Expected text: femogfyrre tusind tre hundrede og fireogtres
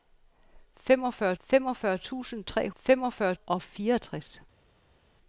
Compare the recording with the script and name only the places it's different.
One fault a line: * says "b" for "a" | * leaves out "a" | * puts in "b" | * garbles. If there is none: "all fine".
* puts in "femogfyrre"
* says "femogfyrre" for "hundrede"